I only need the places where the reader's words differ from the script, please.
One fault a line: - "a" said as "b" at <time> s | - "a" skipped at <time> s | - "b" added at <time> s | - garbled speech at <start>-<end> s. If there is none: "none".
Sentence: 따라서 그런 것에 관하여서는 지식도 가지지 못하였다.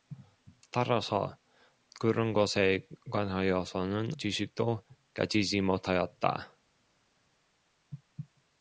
none